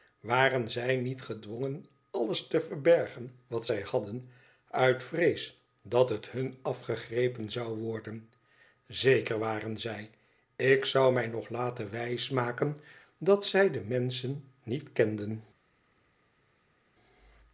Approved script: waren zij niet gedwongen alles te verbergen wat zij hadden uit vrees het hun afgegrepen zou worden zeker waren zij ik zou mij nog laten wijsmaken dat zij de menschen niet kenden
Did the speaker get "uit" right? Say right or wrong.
right